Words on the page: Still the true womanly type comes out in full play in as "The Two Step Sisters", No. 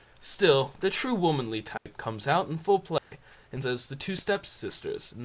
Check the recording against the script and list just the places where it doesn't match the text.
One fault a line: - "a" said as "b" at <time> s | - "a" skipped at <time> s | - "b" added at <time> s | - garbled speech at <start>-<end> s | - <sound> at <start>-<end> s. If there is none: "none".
- dropout at 1.8-1.9 s
- dropout at 3.0-3.1 s